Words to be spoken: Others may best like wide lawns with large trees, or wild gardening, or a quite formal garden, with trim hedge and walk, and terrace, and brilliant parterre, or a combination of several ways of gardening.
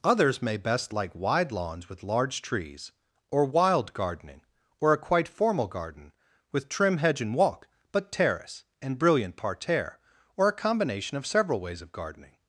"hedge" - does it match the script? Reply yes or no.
yes